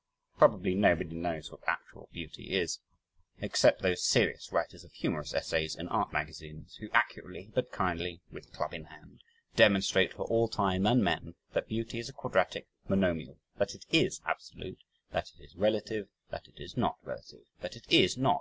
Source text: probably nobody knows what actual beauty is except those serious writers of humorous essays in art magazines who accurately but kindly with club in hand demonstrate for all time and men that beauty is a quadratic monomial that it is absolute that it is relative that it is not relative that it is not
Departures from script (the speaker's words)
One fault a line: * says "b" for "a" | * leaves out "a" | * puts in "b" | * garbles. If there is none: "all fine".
all fine